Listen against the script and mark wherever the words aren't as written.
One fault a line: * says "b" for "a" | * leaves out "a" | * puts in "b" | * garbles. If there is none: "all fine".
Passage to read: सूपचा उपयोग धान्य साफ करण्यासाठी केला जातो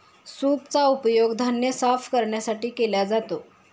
all fine